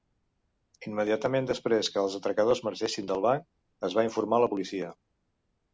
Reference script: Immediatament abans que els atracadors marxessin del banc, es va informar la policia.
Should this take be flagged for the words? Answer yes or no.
yes